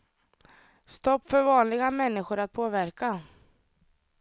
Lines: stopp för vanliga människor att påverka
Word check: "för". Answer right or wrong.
right